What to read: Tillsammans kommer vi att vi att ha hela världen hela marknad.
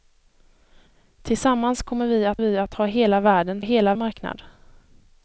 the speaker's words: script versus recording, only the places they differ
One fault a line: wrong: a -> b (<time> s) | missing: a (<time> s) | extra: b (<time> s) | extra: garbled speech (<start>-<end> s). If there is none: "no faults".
no faults